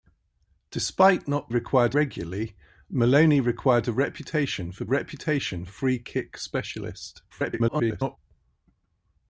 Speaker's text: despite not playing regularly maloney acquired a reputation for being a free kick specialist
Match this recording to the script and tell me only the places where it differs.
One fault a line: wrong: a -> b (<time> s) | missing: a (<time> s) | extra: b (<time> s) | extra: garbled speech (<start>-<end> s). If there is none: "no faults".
wrong: playing -> acquired (1.5 s)
wrong: being -> reputation (4.8 s)
extra: garbled speech (7.3-8.2 s)